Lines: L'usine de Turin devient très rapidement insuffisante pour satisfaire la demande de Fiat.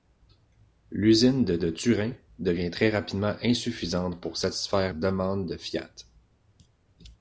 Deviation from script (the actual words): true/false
true